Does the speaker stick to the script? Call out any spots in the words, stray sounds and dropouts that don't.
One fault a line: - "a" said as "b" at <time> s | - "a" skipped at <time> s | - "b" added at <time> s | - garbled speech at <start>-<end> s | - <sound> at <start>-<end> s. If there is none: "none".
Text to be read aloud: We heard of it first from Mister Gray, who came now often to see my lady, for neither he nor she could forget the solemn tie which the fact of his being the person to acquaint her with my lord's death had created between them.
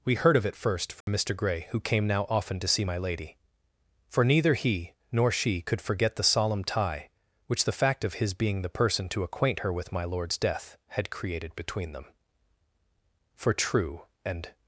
- dropout at 1.0-1.1 s
- "For true and" added at 13.3 s